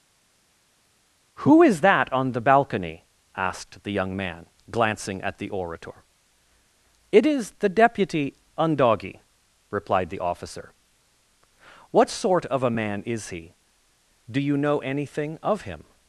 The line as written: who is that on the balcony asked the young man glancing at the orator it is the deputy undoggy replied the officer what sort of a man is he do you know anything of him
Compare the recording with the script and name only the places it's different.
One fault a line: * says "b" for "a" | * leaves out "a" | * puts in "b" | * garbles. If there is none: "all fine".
all fine